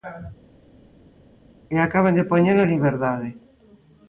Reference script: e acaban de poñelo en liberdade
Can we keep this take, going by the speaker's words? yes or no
yes